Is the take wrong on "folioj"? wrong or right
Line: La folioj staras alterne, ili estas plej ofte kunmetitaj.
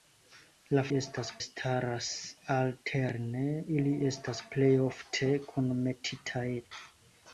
wrong